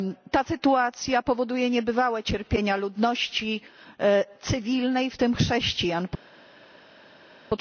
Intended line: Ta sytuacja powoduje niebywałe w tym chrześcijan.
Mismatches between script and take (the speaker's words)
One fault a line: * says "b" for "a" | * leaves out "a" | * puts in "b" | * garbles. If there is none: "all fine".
* puts in "cierpienia ludności cywilnej"